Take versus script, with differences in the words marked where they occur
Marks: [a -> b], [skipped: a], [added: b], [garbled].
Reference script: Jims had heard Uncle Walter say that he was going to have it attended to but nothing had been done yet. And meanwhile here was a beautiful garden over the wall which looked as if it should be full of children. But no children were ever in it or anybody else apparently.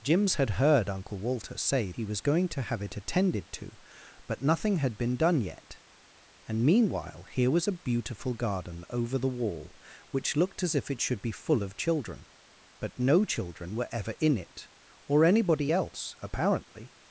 Jims had heard Uncle Walter say [skipped: that] he was going to have it attended to but nothing had been done yet. And meanwhile here was a beautiful garden over the wall which looked as if it should be full of children. But no children were ever in it or anybody else apparently.